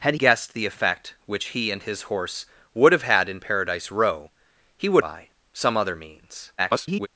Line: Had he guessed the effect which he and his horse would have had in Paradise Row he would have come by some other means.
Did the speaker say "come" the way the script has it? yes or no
no